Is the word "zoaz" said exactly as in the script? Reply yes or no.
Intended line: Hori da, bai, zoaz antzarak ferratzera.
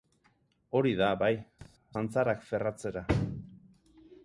no